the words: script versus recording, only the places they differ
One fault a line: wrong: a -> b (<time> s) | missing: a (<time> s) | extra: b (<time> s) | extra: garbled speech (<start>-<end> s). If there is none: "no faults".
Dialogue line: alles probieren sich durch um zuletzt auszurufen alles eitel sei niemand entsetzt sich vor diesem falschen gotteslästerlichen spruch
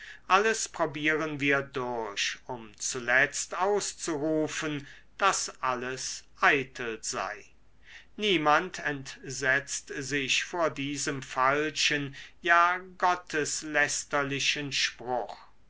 wrong: sich -> wir (1.4 s)
extra: daß (5.2 s)
extra: ja (12.4 s)